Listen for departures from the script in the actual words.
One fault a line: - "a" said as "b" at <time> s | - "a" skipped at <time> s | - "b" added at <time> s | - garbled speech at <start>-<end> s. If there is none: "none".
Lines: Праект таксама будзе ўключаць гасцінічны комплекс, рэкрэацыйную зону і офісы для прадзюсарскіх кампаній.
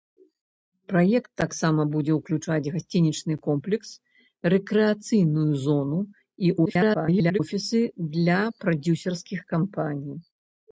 - garbled speech at 6.7-7.4 s